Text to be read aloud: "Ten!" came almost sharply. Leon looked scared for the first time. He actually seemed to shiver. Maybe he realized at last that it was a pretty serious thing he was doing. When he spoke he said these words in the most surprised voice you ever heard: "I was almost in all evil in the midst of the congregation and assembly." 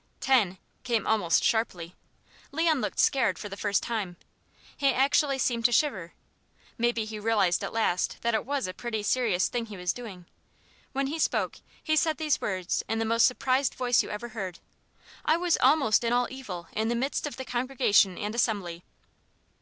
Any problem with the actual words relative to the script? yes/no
no